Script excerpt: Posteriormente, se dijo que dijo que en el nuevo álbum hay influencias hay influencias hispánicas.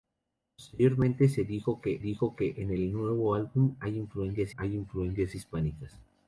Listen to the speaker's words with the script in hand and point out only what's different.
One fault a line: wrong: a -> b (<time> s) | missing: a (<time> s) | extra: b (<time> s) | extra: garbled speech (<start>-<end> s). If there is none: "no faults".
no faults